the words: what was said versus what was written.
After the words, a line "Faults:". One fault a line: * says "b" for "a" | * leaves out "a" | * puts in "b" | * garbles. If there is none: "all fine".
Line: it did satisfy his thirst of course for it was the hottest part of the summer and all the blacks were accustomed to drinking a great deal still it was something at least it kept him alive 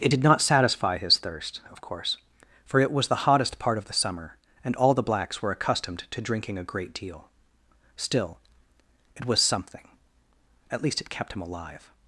it did not satisfy his thirst of course for it was the hottest part of the summer and all the blacks were accustomed to drinking a great deal still it was something at least it kept him alive
Faults:
* puts in "not"